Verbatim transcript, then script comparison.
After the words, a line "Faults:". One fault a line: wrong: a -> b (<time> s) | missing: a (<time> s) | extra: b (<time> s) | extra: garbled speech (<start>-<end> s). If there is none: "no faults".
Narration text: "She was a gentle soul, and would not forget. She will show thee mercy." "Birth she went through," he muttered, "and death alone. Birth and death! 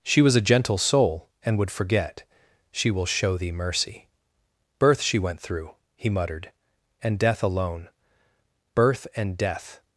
"She was a gentle soul, and would forget. She will show thee mercy." "Birth she went through," he muttered, "and death alone. Birth and death!
Faults:
missing: not (1.7 s)